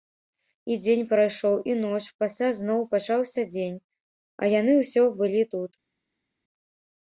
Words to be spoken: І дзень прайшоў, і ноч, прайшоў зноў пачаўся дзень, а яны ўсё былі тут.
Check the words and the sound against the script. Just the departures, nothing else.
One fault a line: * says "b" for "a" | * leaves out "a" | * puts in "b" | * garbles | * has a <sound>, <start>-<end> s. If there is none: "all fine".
* says "пасля" for "прайшоў"